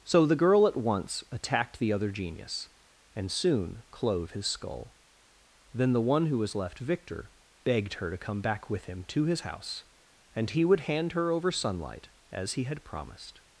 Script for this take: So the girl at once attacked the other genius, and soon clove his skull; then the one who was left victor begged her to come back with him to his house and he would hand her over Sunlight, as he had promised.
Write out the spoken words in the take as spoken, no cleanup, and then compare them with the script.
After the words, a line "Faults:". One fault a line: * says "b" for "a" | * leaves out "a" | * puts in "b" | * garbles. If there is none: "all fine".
So the girl at once attacked the other genius, and soon clove his skull; then the one who was left victor begged her to come back with him to his house and he would hand her over Sunlight, as he had promised.
Faults:
all fine